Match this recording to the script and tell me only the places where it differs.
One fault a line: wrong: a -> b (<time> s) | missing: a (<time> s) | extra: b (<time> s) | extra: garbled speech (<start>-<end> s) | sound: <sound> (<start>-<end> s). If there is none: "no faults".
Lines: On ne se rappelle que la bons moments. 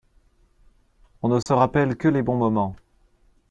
sound: dropout (1.4-1.5 s)
wrong: la -> les (2.1 s)